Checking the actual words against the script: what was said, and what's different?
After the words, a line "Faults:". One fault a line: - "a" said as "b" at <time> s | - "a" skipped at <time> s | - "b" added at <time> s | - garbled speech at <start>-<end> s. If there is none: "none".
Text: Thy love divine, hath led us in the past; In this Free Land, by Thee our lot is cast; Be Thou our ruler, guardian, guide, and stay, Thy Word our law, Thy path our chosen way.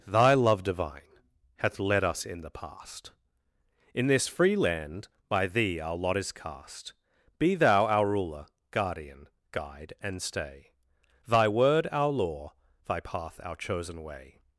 Thy love divine, hath led us in the past; In this Free Land, by Thee our lot is cast; Be Thou our ruler, guardian, guide, and stay, Thy Word our law, Thy path our chosen way.
Faults:
none